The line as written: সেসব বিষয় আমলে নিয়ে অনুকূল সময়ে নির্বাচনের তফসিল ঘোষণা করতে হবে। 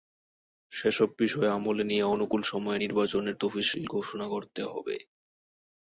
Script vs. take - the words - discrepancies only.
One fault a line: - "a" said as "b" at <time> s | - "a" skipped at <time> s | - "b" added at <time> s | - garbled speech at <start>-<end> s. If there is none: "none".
none